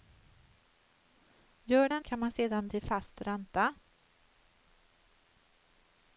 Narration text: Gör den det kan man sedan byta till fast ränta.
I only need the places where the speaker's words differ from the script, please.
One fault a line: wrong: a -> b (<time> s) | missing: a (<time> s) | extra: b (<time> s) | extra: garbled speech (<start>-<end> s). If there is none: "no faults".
missing: det (2.0 s)
missing: byta (2.7 s)